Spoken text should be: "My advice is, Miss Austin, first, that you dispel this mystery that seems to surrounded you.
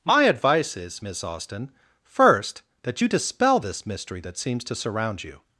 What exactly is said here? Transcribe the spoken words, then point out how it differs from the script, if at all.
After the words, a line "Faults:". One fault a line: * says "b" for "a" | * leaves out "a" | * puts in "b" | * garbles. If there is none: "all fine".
"My advice is, Miss Austin, first, that you dispel this mystery that seems to surround you.
Faults:
* says "surround" for "surrounded"